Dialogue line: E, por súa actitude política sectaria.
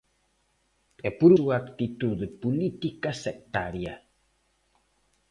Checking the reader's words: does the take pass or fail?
pass